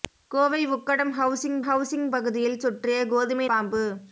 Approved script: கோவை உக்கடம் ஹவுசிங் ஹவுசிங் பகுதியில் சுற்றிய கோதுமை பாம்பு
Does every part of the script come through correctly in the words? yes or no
yes